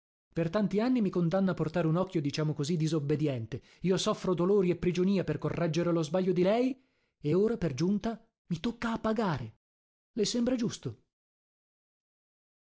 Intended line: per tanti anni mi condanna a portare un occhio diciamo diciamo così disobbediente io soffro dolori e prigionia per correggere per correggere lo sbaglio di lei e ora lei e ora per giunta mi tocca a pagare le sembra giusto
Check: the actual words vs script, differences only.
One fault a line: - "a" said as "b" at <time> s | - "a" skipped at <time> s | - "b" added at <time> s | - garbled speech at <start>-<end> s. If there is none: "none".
- "diciamo" skipped at 2.5 s
- "per correggere" skipped at 5.9 s
- "lei e ora" skipped at 7.6 s